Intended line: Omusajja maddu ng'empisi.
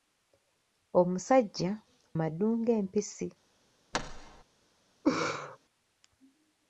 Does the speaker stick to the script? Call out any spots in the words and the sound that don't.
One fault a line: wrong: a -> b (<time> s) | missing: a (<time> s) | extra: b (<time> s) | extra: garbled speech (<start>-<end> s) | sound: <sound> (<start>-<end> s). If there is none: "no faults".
sound: thud (3.9-4.4 s)
sound: laugh (5.0-5.6 s)